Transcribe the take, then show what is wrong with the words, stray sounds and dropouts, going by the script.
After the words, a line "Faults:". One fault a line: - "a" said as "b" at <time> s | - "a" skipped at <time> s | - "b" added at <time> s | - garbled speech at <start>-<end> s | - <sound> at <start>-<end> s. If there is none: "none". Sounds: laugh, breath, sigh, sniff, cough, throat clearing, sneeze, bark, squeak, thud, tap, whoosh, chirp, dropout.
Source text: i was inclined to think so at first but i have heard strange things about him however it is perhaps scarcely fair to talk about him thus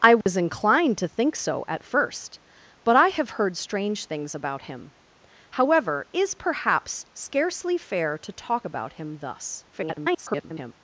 i was inclined to think so at first but i have heard strange things about him however is perhaps scarcely fair to talk about him thus [garbled]
Faults:
- dropout at 0.2-0.3 s
- "it" skipped at 6.1 s
- garbled speech at 9.7-10.7 s